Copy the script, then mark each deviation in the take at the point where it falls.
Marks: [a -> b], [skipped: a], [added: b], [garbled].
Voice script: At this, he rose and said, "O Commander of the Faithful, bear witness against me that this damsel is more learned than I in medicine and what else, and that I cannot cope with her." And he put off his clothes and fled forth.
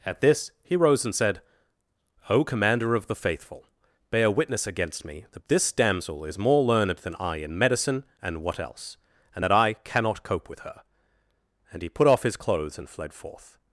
At this, he rose and said, "O Commander of the Faithful, bear witness against me that this damsel is more learned than I in medicine and what else, and that I cannot cope with her." And he put off his clothes and fled forth.